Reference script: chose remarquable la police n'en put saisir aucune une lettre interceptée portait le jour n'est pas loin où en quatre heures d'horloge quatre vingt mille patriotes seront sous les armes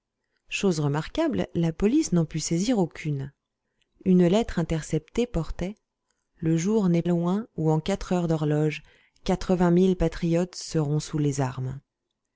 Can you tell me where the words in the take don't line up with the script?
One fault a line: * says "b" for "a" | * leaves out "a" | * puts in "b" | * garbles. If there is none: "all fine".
* leaves out "pas"